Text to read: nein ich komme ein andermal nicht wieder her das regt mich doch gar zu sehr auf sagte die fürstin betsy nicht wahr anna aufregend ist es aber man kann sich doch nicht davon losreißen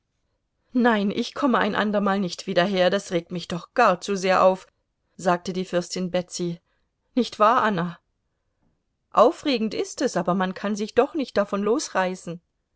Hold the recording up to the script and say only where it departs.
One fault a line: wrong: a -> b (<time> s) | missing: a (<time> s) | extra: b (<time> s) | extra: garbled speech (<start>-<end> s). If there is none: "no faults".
no faults